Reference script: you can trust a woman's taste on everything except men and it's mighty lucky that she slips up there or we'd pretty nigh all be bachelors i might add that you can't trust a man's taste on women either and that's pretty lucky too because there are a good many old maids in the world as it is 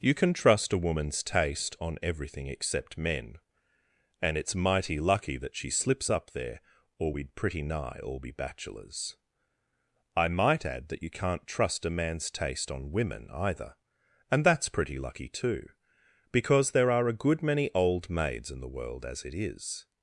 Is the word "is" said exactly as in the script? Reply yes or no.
yes